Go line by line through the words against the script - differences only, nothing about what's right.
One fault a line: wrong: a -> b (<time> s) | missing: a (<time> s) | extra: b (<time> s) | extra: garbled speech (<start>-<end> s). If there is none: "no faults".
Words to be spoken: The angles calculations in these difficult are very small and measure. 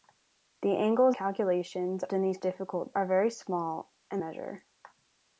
no faults